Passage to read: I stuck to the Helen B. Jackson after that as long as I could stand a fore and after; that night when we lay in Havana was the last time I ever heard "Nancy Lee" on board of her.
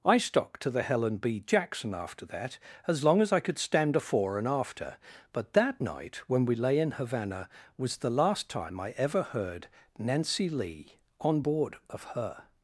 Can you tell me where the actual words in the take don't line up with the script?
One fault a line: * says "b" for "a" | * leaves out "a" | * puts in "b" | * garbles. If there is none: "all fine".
* puts in "but"